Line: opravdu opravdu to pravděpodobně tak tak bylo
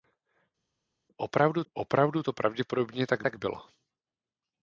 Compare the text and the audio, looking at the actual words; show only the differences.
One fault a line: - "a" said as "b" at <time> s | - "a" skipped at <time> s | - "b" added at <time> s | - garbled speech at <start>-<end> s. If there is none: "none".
none